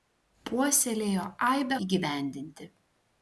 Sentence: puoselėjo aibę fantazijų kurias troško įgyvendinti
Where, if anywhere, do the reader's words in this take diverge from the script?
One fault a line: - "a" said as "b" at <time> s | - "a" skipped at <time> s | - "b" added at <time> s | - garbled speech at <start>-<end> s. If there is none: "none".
- "fantazijų kurias troško" skipped at 1.8 s